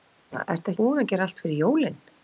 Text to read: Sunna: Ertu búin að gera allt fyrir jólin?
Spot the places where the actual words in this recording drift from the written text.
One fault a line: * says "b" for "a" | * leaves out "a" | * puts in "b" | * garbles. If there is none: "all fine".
all fine